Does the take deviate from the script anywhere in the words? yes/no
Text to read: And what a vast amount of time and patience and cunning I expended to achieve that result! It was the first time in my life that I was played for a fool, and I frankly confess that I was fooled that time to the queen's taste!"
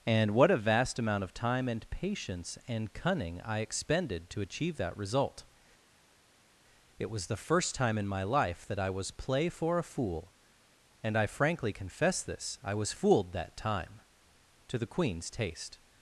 yes